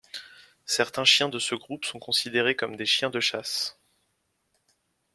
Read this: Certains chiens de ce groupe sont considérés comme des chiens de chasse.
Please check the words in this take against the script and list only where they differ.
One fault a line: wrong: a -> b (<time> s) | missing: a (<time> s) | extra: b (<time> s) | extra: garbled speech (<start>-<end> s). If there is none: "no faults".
no faults